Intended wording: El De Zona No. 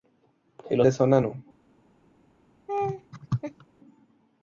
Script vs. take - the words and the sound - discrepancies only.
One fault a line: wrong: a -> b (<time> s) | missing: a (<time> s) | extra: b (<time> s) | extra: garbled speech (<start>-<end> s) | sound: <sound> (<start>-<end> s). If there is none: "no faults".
sound: laugh (2.7-3.7 s)